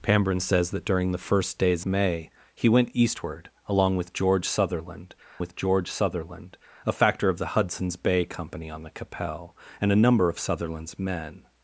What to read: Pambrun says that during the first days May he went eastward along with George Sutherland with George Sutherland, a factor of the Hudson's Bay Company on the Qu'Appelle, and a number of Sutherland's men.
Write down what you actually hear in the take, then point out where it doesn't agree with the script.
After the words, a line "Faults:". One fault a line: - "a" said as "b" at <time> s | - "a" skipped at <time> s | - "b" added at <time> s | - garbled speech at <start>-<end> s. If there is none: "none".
Pambrun says that during the first days May he went eastward along with George Sutherland with George Sutherland, a factor of the Hudson's Bay Company on the Qu'Appelle, and a number of Sutherland's men.
Faults:
none